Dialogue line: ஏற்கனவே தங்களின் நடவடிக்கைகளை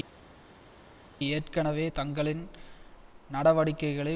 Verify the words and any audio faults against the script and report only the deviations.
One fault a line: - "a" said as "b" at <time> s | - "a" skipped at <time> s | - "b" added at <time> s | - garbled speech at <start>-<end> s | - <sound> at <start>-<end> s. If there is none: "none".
none